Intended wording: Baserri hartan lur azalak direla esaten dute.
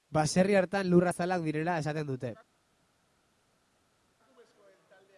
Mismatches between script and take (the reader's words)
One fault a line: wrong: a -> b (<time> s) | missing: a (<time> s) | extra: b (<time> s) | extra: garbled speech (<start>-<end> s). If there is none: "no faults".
no faults